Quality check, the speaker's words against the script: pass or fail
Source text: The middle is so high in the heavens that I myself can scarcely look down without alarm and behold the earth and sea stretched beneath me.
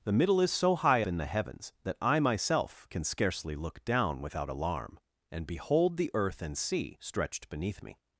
pass